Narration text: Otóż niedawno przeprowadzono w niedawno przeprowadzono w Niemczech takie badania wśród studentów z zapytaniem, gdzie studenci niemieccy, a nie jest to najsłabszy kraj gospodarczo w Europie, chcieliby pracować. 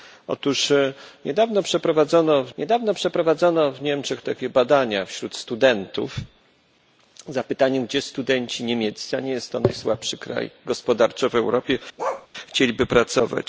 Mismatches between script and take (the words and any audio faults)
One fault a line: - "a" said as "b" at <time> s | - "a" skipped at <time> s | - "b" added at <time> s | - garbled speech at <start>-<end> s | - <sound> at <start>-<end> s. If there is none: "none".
- bark at 12.0-12.3 s